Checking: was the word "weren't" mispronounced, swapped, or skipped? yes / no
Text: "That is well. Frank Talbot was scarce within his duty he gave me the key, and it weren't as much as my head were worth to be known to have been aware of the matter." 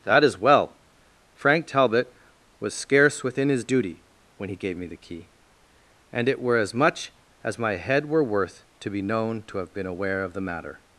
yes